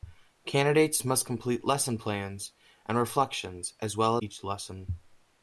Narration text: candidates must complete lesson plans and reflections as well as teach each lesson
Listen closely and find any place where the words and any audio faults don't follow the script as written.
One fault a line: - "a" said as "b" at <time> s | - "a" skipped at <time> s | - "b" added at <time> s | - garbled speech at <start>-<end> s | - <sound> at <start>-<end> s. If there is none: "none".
- "as teach" skipped at 4.2 s